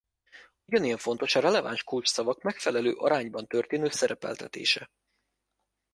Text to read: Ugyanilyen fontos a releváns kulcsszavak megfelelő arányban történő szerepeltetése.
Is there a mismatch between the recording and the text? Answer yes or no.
no